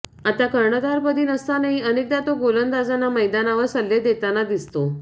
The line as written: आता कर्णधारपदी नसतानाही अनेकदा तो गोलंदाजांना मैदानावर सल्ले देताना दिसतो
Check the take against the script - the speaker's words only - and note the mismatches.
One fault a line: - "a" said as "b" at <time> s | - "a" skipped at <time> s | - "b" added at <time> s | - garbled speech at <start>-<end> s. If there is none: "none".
none